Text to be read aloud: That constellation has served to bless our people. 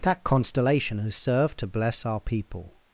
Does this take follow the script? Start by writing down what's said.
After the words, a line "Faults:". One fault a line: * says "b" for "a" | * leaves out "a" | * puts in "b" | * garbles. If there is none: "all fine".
That constellation has served to bless our people.
Faults:
all fine